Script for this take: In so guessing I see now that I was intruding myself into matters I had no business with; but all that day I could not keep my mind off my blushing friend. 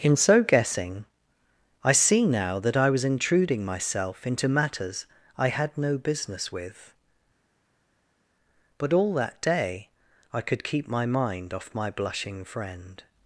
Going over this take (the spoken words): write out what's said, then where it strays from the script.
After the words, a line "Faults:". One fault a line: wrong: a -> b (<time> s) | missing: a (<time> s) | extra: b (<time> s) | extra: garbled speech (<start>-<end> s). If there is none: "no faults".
In so guessing I see now that I was intruding myself into matters I had no business with; but all that day I could keep my mind off my blushing friend.
Faults:
missing: not (10.6 s)